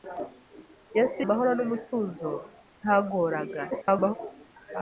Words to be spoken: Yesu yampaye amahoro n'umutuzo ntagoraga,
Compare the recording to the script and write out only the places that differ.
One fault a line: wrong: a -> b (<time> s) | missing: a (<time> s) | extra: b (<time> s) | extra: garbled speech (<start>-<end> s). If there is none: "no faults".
missing: yampaye (1.2 s)
extra: garbled speech (3.7-4.2 s)